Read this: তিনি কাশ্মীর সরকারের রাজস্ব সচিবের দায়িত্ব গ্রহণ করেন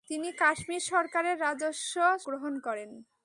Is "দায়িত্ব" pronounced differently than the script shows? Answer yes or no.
yes